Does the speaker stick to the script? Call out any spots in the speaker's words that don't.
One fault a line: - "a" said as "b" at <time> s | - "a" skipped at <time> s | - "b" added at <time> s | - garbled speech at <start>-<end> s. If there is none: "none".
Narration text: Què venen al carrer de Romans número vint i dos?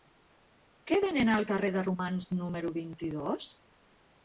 none